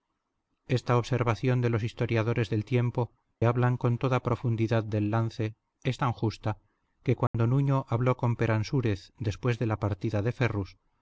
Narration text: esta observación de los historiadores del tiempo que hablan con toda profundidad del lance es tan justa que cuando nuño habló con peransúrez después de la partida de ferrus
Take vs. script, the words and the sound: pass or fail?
fail